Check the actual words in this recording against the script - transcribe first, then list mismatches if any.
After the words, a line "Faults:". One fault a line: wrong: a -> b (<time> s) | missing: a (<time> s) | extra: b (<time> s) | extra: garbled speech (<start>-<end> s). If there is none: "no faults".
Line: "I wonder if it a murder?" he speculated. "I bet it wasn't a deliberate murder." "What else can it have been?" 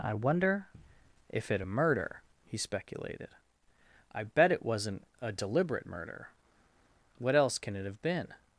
"I wonder if it a murder?" he speculated. "I bet it wasn't a deliberate murder." "What else can it have been?"
Faults:
no faults